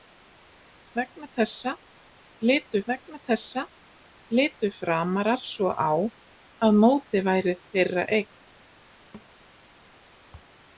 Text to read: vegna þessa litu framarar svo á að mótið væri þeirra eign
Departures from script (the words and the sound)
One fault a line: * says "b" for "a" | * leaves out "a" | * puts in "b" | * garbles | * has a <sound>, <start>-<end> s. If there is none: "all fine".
* puts in "vegna þessa litu"
* has a thud, 9.1-9.3 s